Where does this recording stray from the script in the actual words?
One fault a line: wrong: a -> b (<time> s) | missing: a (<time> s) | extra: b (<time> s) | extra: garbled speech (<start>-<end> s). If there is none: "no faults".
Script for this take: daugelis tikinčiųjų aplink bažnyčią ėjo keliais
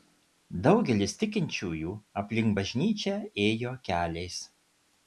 no faults